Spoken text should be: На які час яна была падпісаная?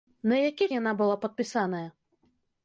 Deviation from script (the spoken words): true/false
true